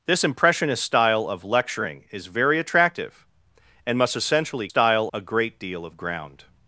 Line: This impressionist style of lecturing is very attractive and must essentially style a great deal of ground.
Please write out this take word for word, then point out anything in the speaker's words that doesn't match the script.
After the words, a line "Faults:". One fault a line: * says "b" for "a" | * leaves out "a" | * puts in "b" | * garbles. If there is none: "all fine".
This impressionist style of lecturing is very attractive and must essentially style a great deal of ground.
Faults:
all fine